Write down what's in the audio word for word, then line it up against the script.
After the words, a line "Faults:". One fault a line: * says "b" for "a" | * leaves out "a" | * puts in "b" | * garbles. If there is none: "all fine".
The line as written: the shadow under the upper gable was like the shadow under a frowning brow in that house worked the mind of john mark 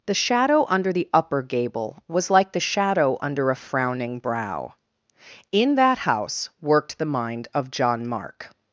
the shadow under the upper gable was like the shadow under a frowning brow in that house worked the mind of john mark
Faults:
all fine